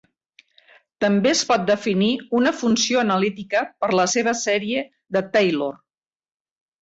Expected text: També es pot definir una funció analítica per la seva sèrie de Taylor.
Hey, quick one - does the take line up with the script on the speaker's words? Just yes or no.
yes